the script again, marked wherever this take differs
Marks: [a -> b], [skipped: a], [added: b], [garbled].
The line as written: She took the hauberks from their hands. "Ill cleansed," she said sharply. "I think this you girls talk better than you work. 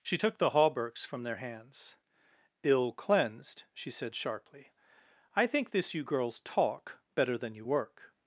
She took the hauberks from their hands. "Ill cleansed," she said sharply. "I think this you girls talk better than you work.